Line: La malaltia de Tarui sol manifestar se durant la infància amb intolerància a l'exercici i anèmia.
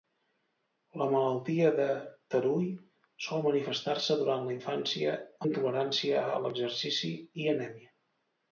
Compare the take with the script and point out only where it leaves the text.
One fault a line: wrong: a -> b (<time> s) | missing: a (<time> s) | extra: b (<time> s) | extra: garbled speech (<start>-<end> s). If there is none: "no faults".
missing: amb (5.2 s)